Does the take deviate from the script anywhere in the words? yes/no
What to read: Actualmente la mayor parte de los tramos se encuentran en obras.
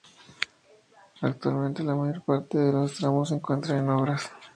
no